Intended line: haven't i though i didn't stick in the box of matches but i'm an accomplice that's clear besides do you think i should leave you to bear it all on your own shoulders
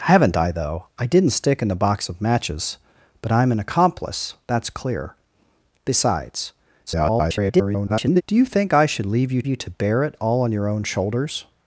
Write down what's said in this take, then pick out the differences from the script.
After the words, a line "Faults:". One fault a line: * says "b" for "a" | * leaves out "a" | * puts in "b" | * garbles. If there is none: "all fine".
haven't i though i didn't stick in the box of matches but i'm an accomplice that's clear besides [garbled] do you think i should leave you you to bear it all on your own shoulders
Faults:
* garbles
* puts in "you"